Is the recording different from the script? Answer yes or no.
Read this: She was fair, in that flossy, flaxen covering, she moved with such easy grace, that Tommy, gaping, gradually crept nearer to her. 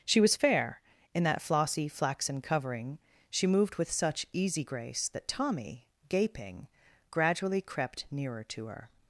no